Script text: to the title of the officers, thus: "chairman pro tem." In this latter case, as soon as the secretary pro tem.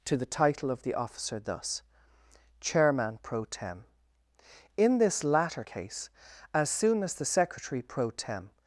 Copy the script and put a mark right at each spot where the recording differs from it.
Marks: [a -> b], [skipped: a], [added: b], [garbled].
to the title of the [officers, -> officer] thus: "chairman pro tem." In this latter case, as soon as the secretary pro tem.